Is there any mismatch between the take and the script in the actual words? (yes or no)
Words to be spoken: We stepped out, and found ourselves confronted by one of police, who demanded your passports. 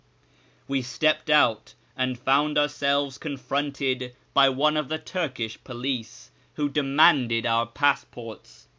yes